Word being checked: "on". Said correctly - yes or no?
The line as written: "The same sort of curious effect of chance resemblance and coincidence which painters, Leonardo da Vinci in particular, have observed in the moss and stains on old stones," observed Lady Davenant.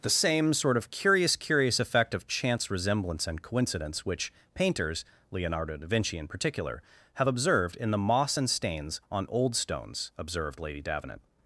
yes